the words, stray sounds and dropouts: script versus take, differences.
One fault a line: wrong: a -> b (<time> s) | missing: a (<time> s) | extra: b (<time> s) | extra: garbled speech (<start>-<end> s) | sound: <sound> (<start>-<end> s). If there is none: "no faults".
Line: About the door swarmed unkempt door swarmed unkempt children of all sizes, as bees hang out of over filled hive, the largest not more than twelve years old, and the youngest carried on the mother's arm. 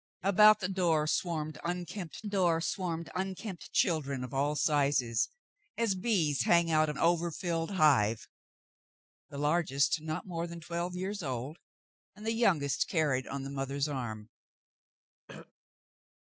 sound: throat clearing (15.3-15.5 s)